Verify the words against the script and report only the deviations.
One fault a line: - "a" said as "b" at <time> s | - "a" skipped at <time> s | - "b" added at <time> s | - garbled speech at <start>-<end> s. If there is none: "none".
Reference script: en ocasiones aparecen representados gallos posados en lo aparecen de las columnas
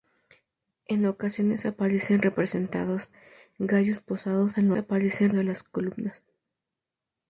none